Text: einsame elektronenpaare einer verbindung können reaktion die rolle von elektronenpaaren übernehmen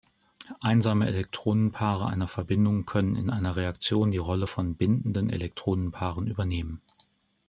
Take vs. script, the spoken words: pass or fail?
fail